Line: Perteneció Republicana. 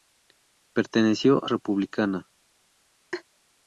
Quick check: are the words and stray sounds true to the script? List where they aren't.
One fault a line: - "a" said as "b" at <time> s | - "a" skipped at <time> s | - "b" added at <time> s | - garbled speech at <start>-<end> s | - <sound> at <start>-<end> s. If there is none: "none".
- laugh at 3.1-3.2 s